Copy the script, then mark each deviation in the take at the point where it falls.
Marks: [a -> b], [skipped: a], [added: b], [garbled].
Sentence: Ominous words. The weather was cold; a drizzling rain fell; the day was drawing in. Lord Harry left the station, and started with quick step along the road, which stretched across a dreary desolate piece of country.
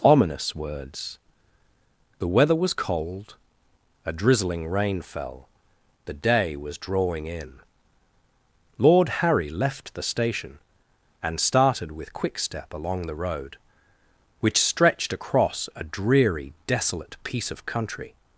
Ominous words. The weather was cold; a drizzling rain fell; the day was drawing in. Lord Harry left the station, and started with quick step along the road, which stretched across a dreary desolate piece of country.